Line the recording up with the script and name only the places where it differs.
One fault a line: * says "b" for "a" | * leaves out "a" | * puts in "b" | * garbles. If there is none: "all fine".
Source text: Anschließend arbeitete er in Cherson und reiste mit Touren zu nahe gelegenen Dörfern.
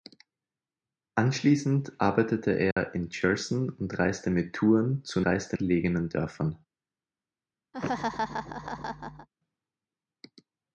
* says "reiste" for "nahe"